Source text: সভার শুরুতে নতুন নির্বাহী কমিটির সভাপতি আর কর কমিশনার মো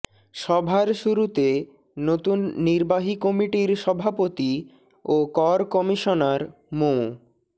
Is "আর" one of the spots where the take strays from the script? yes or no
yes